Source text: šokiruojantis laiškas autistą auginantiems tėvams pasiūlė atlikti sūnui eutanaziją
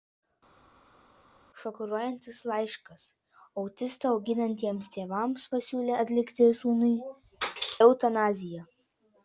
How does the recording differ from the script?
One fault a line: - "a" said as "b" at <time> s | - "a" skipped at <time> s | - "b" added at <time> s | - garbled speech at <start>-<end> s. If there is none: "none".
none